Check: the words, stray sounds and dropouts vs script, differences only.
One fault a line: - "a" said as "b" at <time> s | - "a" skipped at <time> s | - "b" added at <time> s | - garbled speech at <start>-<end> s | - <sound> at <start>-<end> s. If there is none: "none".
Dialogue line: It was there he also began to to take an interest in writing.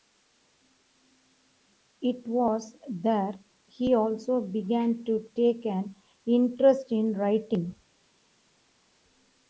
- "to" skipped at 5.3 s